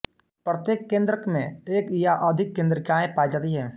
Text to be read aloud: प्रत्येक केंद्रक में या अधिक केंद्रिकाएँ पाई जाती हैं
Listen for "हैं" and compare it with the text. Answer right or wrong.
right